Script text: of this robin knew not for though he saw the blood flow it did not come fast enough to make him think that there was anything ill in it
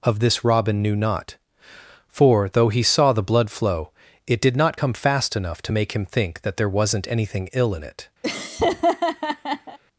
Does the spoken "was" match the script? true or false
false